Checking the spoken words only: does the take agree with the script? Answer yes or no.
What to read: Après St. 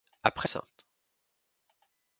yes